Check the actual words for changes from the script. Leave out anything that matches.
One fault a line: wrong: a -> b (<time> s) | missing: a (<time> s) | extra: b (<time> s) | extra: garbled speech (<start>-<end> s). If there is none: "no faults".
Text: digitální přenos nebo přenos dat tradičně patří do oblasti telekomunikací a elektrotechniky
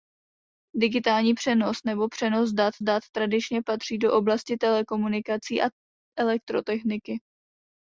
extra: dat (2.8 s)